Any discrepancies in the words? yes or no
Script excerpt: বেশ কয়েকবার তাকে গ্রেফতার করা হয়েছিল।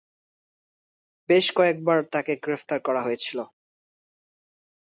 no